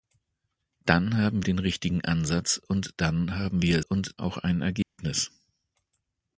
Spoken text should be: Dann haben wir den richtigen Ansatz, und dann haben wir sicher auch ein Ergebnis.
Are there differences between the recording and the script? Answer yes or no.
yes